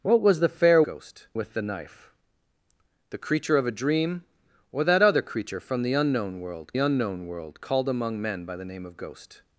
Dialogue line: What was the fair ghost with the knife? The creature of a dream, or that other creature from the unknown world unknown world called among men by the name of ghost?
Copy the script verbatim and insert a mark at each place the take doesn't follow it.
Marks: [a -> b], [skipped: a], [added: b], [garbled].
What was the fair ghost with the knife? The creature of a dream, or that other creature from the unknown world unknown world called among men by the name of ghost?